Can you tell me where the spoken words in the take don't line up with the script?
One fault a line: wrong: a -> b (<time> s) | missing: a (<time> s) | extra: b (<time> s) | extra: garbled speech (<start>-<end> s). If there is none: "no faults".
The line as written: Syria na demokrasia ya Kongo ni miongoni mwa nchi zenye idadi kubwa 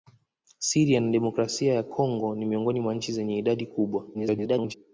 extra: garbled speech (4.1-4.7 s)